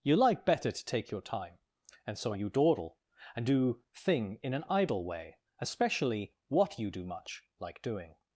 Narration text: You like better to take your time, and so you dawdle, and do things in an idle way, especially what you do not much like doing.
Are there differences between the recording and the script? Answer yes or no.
yes